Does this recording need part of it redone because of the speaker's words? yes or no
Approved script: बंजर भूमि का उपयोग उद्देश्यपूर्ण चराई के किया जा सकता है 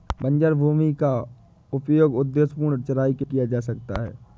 no